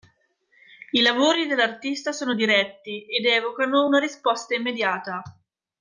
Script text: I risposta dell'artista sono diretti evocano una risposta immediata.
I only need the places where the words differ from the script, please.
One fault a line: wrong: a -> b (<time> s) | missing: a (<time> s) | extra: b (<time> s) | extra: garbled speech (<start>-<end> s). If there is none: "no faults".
wrong: risposta -> lavori (1.0 s)
extra: ed (3.1 s)